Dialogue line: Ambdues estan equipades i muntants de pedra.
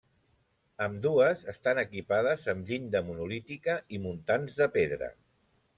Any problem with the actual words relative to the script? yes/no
yes